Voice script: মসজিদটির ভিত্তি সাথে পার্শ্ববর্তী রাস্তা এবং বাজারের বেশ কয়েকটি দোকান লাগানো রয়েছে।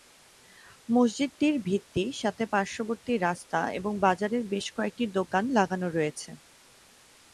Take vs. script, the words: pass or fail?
pass